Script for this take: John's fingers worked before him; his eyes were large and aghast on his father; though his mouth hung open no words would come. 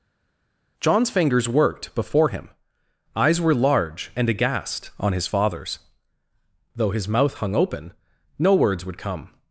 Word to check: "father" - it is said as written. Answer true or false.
false